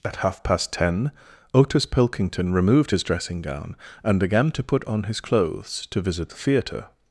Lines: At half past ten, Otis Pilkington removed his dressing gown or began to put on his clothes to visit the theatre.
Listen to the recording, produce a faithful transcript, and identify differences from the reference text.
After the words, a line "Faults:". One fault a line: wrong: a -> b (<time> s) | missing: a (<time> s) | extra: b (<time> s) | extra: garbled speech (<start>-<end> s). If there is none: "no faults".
At half past ten, Otis Pilkington removed his dressing gown and began to put on his clothes to visit the theatre.
Faults:
wrong: or -> and (4.0 s)